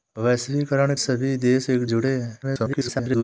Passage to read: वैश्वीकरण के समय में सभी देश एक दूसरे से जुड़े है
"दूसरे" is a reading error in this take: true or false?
true